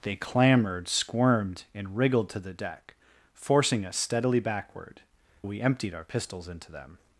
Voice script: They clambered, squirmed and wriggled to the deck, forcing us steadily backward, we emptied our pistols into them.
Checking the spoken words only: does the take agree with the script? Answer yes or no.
yes